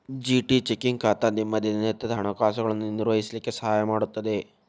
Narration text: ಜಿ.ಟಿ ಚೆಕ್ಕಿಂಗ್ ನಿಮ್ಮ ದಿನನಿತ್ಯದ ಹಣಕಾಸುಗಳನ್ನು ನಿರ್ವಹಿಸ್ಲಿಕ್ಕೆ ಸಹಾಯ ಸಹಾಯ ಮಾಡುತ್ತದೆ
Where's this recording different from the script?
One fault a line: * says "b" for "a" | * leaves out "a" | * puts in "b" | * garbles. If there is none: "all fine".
* puts in "ಖಾತಾ"
* leaves out "ಸಹಾಯ"